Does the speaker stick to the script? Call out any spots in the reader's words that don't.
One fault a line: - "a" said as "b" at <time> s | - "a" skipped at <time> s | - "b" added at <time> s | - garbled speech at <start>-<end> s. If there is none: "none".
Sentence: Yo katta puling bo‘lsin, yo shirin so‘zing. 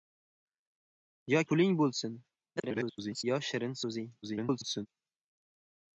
- "katta" skipped at 1.4 s
- garbled speech at 2.6-3.2 s
- garbled speech at 4.2-4.9 s